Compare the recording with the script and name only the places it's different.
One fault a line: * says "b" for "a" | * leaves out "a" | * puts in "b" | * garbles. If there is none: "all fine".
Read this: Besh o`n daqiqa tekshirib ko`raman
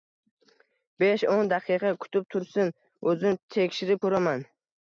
* puts in "kutib tursin o`zim"